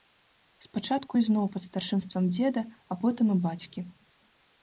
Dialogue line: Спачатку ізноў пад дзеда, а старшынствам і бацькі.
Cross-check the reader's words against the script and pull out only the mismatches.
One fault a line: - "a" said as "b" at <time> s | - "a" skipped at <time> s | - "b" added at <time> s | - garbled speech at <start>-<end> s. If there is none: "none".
- "старшынствам" added at 1.7 s
- "старшынствам" said as "потым" at 3.0 s